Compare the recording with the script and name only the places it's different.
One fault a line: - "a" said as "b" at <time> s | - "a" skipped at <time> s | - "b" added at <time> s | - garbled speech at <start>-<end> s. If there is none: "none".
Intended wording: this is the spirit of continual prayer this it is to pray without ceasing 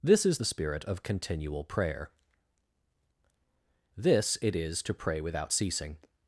none